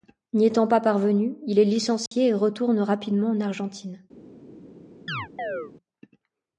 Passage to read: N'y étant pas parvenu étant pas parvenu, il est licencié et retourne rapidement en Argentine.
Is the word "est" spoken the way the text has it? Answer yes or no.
yes